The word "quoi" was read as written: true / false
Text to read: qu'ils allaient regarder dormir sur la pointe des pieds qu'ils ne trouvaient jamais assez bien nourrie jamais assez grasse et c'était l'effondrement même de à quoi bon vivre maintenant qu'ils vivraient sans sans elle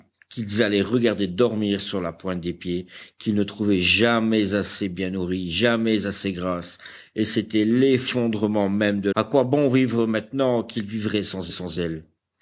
true